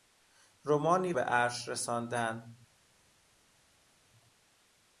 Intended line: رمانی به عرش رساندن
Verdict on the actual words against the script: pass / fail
pass